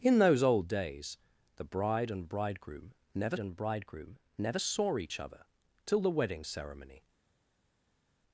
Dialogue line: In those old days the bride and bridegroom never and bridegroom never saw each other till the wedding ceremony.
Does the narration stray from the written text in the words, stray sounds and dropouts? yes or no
no